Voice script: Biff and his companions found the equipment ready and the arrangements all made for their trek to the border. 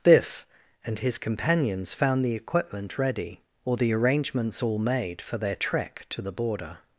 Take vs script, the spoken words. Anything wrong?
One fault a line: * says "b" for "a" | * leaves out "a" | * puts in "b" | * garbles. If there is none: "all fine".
* says "or" for "and"